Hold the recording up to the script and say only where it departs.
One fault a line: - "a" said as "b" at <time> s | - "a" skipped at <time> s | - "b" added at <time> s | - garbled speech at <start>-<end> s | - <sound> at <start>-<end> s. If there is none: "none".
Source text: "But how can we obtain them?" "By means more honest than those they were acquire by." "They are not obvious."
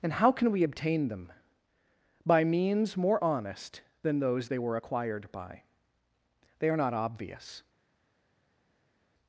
- "But" said as "And" at 0.0 s
- "acquire" said as "acquired" at 4.7 s